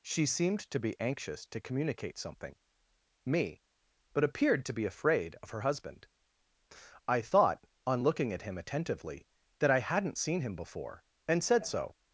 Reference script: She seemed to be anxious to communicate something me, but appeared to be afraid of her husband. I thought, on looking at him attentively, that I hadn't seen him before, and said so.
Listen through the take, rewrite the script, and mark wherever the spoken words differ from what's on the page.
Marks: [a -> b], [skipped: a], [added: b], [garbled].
She seemed to be anxious to communicate something me, but appeared to be afraid of her husband. I thought, on looking at him attentively, that I hadn't seen him before, and said so.